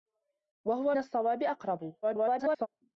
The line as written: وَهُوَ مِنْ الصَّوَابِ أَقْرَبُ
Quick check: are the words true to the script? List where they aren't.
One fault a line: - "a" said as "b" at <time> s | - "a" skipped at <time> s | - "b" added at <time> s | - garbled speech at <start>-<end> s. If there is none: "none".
- "مِنْ" skipped at 0.9 s
- garbled speech at 2.0-2.7 s